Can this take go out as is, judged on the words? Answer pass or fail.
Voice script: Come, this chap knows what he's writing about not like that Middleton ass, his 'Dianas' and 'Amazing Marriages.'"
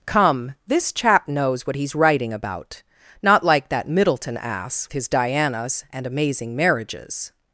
pass